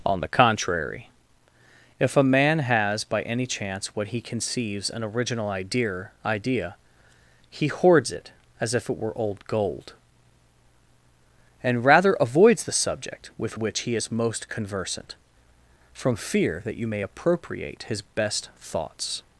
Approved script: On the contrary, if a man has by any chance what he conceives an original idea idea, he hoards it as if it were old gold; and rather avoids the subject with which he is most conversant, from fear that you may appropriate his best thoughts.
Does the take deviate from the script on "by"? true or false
false